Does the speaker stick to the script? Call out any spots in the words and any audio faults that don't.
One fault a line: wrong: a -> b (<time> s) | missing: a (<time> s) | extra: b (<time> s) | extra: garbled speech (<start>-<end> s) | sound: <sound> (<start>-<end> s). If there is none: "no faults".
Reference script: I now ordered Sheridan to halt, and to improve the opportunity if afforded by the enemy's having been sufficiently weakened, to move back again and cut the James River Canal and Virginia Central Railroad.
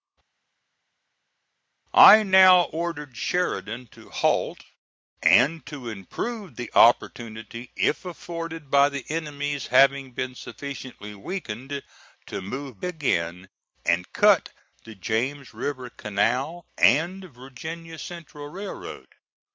missing: back (12.8 s)